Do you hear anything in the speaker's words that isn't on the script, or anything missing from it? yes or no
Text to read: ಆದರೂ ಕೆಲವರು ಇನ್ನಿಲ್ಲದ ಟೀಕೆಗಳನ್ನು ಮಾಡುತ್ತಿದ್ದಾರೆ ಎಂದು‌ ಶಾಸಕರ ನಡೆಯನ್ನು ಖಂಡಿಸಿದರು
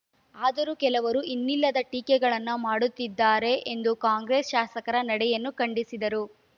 yes